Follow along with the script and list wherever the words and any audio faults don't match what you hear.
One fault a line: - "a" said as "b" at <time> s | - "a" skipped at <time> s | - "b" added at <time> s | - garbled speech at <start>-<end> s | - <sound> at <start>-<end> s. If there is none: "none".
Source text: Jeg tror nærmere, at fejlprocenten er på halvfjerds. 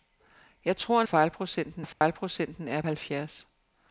- "nærmere" said as "fejlprocenten" at 1.1 s
- dropout at 1.9-2.0 s
- "på" skipped at 2.8 s